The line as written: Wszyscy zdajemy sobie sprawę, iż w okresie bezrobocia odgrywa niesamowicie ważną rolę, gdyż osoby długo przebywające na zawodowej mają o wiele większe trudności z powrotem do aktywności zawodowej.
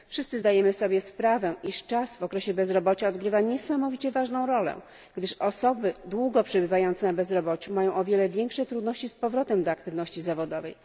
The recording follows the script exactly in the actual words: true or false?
false